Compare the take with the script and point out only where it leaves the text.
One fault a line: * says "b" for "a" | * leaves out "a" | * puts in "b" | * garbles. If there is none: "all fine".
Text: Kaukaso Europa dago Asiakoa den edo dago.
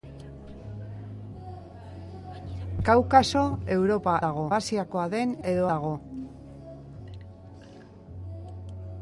all fine